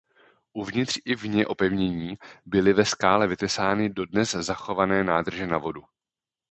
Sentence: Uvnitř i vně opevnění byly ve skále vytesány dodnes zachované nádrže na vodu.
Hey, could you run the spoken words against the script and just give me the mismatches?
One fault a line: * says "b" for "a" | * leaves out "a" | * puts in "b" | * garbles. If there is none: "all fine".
all fine